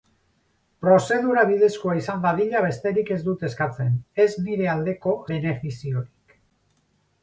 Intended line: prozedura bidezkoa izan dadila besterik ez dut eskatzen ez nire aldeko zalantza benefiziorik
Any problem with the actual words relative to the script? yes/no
yes